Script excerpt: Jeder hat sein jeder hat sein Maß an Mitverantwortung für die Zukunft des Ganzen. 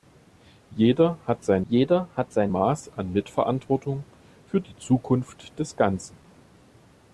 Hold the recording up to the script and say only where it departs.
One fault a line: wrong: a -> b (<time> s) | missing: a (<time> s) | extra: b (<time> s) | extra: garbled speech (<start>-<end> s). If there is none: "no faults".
no faults